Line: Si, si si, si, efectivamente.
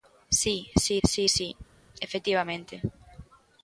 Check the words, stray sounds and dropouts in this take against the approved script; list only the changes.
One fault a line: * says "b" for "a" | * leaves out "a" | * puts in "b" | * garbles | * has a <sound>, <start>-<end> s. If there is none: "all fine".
all fine